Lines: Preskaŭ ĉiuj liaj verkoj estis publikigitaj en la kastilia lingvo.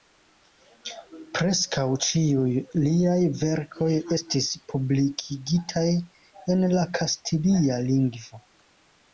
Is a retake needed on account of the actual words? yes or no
no